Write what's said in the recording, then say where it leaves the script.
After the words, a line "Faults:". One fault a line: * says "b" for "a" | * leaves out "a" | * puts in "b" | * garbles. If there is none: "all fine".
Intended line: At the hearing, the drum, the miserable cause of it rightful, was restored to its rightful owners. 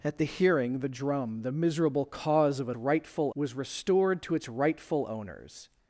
At the hearing, the drum, the miserable cause of it rightful, was restored to its rightful owners.
Faults:
all fine